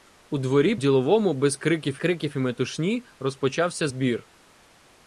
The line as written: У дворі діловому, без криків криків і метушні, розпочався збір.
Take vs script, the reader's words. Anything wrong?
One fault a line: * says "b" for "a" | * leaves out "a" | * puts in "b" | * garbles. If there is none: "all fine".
all fine